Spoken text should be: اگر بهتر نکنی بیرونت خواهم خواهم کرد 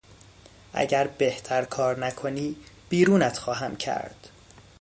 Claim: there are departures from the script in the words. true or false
true